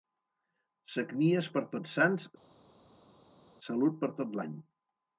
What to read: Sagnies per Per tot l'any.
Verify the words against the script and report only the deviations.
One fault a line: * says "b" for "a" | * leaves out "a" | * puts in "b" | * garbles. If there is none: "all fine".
* puts in "Tots Sants salut"